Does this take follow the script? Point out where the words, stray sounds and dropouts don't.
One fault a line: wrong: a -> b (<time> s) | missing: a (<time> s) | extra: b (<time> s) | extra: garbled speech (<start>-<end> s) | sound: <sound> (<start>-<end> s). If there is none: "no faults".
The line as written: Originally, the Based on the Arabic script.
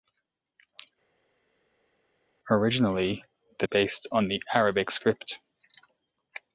no faults